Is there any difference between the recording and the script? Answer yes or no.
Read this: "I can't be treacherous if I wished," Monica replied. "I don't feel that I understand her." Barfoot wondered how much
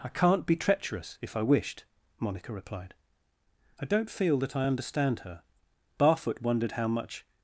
no